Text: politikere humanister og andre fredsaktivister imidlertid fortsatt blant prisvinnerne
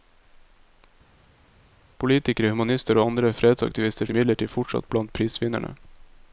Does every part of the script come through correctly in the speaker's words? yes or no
yes